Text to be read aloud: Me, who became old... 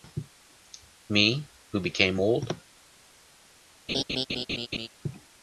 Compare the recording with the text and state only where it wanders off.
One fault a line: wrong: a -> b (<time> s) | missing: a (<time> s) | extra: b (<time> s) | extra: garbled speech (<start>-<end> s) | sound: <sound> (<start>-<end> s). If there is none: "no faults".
sound: laugh (3.9-4.9 s)